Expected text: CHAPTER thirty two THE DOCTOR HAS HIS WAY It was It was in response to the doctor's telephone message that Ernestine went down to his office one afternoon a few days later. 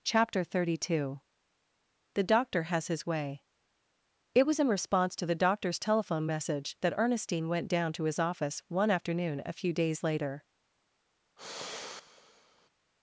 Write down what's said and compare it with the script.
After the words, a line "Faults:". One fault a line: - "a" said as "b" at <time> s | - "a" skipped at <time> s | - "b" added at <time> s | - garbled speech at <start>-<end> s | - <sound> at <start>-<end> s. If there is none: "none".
CHAPTER thirty two THE DOCTOR HAS HIS WAY It was in response to the doctor's telephone message that Ernestine went down to his office one afternoon a few days later.
Faults:
- "It was" skipped at 4.6 s
- sigh at 11.4-12.7 s